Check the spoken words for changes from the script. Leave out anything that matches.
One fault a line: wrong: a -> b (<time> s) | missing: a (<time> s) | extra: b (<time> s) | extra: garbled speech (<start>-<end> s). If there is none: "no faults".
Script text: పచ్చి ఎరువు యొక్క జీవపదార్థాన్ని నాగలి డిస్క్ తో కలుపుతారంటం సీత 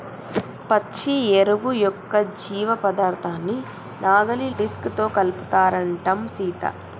no faults